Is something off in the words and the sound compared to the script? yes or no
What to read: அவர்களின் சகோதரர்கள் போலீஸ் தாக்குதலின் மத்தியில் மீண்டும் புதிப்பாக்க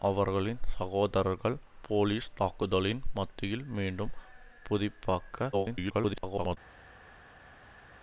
yes